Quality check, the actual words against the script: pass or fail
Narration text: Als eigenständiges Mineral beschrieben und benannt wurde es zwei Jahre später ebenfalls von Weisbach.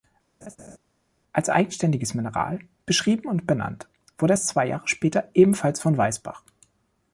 pass